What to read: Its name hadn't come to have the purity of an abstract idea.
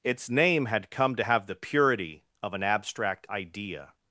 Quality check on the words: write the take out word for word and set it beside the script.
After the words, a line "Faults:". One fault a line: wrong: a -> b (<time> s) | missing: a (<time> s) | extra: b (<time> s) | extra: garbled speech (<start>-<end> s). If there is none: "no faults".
Its name had come to have the purity of an abstract idea.
Faults:
wrong: hadn't -> had (0.7 s)